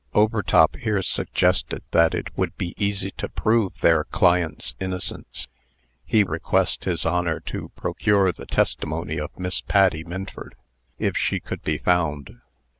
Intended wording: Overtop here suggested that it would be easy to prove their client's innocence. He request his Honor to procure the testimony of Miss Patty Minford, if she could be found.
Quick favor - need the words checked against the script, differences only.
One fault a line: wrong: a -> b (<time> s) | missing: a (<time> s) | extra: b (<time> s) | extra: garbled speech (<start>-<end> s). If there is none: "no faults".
no faults